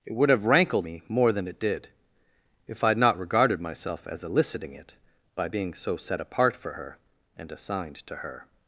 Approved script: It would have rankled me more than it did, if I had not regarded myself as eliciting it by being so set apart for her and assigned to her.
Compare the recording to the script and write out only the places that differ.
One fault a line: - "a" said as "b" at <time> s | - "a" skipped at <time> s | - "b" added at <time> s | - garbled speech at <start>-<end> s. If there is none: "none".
none